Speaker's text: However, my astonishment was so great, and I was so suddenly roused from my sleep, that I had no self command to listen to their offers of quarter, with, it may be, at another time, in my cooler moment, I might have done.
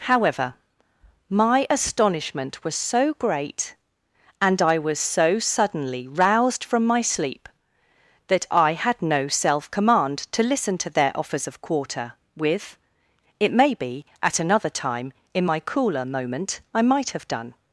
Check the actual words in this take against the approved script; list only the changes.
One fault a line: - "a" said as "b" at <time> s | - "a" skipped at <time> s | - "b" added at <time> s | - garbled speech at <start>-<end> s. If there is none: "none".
none